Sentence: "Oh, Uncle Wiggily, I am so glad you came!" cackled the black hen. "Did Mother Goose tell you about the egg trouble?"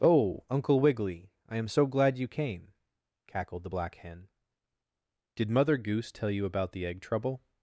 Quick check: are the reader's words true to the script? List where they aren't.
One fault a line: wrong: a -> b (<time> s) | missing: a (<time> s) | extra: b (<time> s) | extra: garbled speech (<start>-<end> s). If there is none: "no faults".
no faults